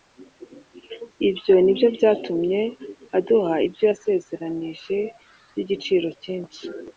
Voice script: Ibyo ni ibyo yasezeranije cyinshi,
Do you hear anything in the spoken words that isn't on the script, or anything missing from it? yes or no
yes